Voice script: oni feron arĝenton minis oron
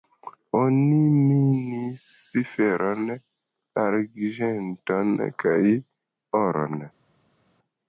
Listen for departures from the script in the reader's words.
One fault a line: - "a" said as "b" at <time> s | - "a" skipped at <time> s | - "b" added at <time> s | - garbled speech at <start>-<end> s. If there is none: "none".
- "minis" added at 1.2 s
- "minis" said as "kaj" at 5.5 s